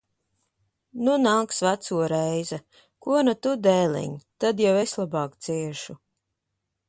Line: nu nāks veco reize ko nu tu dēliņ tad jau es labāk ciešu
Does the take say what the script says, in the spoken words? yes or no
yes